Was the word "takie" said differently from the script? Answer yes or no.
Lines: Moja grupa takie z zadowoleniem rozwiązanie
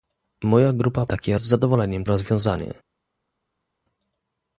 no